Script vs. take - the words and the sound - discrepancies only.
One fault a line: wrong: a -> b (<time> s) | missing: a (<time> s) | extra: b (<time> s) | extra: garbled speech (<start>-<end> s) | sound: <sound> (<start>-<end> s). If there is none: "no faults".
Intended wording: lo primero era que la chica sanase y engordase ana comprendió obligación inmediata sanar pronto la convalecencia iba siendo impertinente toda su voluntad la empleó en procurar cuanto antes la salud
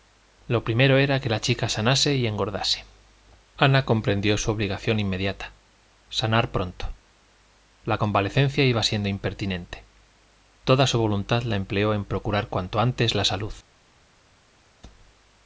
extra: su (4.4 s)